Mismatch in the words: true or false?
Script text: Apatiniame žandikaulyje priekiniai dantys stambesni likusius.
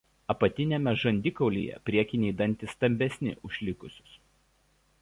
true